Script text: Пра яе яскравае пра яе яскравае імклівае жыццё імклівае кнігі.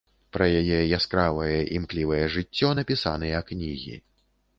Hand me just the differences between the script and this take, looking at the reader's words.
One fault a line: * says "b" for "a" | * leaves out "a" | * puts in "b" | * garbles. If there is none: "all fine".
* leaves out "пра яе яскравае"
* says "напісаныя" for "імклівае"